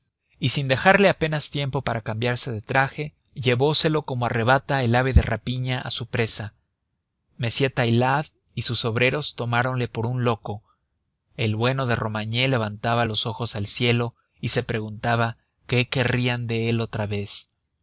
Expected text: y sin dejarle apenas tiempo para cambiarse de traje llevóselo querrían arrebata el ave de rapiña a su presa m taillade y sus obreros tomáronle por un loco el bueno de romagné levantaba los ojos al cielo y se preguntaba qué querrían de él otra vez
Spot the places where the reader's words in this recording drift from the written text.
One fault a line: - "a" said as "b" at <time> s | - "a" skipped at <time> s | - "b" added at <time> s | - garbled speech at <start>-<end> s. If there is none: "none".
- "querrían" said as "como" at 4.0 s